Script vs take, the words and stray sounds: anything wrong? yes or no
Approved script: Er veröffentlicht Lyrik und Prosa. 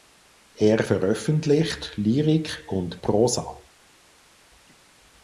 no